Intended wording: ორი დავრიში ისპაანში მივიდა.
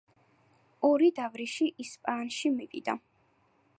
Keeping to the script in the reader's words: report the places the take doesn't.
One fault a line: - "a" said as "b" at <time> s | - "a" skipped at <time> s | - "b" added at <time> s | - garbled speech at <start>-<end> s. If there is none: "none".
none